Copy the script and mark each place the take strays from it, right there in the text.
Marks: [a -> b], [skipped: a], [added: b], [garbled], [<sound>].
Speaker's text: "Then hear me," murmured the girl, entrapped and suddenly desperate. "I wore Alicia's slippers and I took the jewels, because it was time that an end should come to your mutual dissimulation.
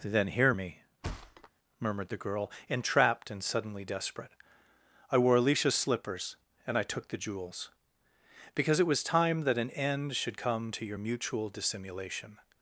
"Then hear me," [thud] murmured the girl, entrapped and suddenly desperate. "I wore Alicia's slippers and I took the jewels, because it was time that an end should come to your mutual dissimulation.